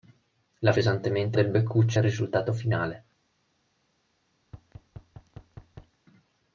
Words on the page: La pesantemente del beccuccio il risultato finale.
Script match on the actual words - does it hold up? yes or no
yes